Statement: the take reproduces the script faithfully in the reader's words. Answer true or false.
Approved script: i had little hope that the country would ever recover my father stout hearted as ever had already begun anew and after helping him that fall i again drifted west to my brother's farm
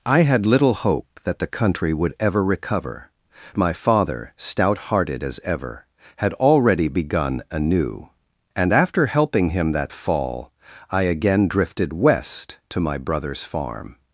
true